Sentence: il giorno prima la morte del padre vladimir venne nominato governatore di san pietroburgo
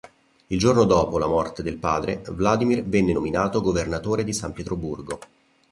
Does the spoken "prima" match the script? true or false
false